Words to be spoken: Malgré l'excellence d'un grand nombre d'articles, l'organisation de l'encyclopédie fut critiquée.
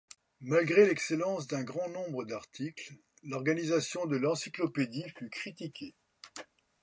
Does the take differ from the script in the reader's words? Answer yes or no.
no